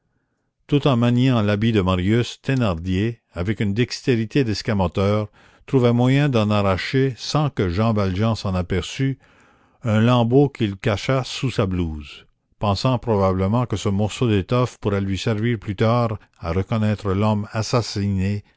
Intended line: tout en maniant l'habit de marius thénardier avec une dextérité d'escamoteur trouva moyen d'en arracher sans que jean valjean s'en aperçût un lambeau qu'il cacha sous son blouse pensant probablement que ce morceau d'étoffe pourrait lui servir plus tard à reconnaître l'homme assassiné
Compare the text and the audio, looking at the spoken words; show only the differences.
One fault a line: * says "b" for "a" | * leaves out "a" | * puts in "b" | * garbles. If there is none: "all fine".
* says "sa" for "son"